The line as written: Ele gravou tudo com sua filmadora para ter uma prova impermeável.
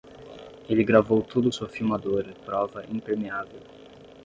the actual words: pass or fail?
fail